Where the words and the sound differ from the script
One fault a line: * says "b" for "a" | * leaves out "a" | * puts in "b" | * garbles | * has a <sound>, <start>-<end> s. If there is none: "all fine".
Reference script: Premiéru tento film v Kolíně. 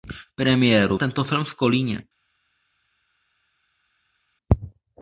all fine